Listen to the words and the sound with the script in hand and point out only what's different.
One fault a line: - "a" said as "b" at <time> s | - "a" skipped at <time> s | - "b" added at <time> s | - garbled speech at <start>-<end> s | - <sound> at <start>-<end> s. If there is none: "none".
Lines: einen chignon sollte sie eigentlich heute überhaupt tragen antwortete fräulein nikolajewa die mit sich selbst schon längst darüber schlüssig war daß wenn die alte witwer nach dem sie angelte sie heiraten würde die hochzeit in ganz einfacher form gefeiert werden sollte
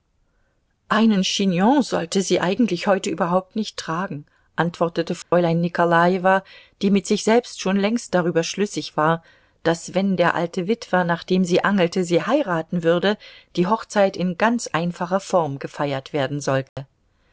- "nicht" added at 3.5 s
- dropout at 5.2-5.3 s
- "die" said as "der" at 10.1 s
- dropout at 16.7-16.8 s